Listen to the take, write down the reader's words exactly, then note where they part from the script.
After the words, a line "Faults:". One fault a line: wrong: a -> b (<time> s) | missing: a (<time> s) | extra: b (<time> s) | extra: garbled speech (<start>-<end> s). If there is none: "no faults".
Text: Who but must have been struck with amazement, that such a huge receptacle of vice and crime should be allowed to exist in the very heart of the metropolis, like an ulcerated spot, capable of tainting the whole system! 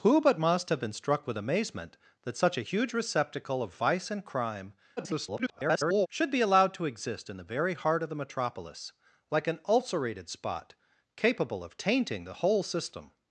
Who but must have been struck with amazement, that such a huge receptacle of vice and crime [garbled] should be allowed to exist in the very heart of the metropolis, like an ulcerated spot, capable of tainting the whole system!
Faults:
extra: garbled speech (5.0-6.1 s)